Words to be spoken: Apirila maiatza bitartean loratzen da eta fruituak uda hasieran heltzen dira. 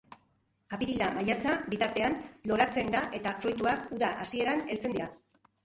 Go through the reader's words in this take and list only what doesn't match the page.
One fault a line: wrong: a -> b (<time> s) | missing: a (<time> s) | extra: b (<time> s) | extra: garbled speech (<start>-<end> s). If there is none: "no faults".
no faults